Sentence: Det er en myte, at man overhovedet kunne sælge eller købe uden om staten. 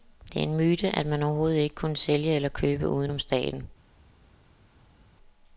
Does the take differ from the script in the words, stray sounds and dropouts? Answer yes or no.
yes